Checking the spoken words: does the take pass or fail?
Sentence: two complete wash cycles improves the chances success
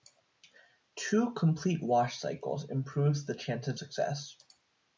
pass